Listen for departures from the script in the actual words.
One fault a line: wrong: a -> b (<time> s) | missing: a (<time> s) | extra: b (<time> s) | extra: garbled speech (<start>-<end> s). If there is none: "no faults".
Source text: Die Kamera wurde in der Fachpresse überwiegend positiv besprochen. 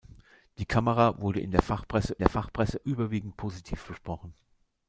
extra: der Fachpresse (2.2 s)